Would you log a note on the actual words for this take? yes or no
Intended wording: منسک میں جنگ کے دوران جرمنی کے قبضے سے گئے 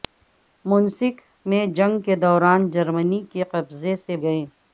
no